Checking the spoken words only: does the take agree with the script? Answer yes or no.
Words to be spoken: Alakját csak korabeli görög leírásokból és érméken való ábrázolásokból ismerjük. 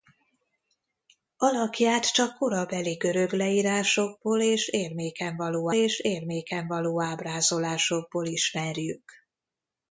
no